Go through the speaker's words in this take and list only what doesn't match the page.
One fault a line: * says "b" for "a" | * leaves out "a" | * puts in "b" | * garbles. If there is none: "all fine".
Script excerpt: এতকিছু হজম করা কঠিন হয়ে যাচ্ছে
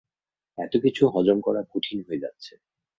all fine